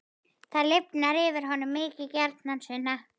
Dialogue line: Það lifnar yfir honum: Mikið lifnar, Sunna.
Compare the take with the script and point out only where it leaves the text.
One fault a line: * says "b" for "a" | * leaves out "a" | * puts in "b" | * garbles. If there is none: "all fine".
* says "gjarnan" for "lifnar"